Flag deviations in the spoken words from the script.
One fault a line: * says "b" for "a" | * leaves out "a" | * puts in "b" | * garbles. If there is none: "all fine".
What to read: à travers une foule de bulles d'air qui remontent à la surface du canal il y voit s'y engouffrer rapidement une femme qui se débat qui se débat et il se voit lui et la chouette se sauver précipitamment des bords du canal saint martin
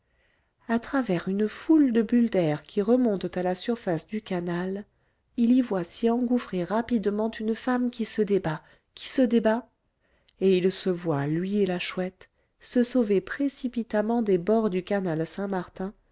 all fine